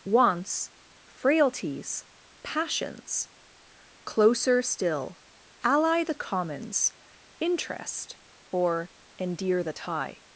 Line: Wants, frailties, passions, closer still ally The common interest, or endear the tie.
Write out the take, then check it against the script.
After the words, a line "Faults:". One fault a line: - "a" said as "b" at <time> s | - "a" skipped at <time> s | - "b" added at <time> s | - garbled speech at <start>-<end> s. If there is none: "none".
Wants, frailties, passions, closer still ally The commons interest, or endear the tie.
Faults:
- "common" said as "commons" at 6.2 s